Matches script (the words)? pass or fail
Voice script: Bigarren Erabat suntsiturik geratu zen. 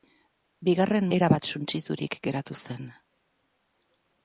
pass